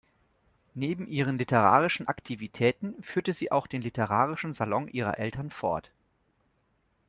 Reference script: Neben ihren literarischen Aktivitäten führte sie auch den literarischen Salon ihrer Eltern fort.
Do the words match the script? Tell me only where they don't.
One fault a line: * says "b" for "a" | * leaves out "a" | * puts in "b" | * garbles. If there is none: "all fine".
all fine